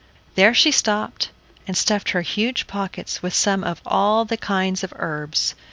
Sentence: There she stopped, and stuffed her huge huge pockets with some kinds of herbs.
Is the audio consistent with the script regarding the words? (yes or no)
no